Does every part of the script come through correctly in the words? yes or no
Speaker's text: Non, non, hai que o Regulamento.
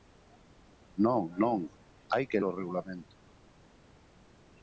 yes